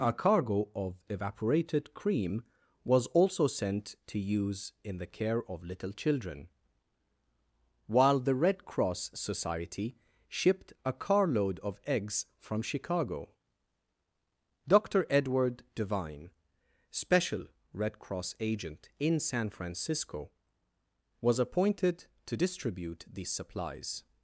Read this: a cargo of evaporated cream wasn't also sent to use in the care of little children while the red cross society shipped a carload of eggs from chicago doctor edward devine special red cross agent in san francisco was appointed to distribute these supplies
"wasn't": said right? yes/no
no